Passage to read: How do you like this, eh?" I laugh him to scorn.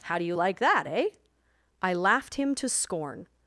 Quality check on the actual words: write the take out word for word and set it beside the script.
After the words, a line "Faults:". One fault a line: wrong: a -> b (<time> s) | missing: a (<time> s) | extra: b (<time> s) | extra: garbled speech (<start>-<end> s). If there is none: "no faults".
How do you like that, eh?" I laughed him to scorn.
Faults:
wrong: this -> that (0.6 s)
wrong: laugh -> laughed (1.9 s)